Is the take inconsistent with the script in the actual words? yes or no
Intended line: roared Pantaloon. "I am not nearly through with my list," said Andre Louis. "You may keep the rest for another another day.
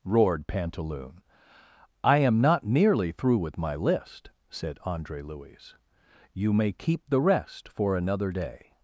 yes